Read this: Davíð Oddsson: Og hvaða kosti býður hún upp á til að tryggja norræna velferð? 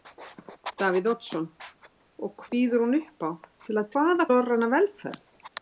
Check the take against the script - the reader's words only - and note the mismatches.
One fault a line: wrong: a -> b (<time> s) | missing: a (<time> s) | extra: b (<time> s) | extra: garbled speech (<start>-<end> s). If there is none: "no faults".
missing: hvaða kosti (2.5 s)
wrong: tryggja -> hvaða (3.9 s)